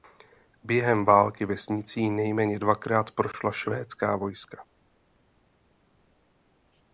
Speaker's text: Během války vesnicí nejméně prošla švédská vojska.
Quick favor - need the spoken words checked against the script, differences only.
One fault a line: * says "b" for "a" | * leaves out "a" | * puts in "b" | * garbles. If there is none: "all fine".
* puts in "dvakrát"